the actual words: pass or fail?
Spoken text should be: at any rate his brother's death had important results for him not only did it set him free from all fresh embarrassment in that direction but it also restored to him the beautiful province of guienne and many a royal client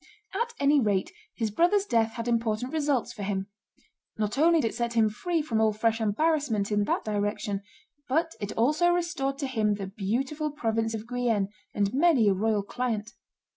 fail